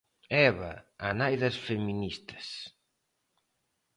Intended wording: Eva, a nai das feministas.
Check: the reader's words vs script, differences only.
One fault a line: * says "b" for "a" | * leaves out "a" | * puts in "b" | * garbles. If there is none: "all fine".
all fine